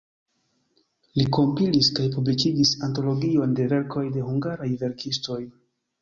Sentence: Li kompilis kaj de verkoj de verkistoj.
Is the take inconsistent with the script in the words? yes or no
yes